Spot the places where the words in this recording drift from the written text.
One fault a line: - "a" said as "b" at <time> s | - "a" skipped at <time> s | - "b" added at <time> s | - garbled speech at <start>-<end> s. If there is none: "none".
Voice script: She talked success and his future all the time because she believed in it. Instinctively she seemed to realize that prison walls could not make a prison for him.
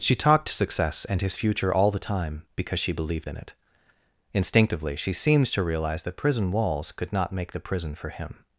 - "a" said as "the" at 7.5 s